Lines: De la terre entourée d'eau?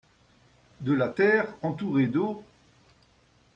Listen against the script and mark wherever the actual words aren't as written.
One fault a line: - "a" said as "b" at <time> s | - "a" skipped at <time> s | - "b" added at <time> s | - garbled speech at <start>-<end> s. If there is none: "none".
none